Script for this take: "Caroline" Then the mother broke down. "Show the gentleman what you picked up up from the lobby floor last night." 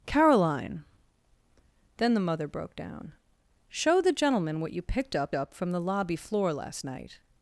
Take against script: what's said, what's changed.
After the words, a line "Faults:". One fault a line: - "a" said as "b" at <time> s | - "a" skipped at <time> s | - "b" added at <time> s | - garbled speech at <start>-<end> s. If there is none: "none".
"Caroline" Then the mother broke down. "Show the gentleman what you picked up up from the lobby floor last night."
Faults:
none